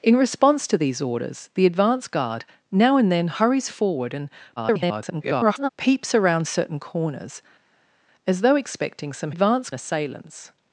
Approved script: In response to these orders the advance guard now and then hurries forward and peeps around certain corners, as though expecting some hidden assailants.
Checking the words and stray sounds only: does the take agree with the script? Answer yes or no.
no